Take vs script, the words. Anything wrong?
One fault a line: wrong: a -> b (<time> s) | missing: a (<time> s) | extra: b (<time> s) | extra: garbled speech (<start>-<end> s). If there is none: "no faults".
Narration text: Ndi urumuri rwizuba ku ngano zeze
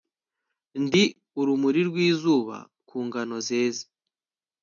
no faults